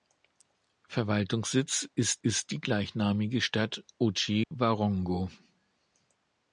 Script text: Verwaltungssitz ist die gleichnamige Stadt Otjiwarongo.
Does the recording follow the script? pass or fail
fail